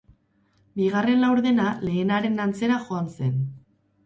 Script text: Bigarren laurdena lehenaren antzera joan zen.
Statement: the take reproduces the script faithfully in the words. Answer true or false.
true